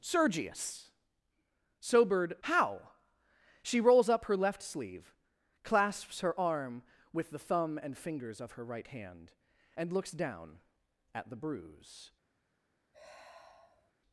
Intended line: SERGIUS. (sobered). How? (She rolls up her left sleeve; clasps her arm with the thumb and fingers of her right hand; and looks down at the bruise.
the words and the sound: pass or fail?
fail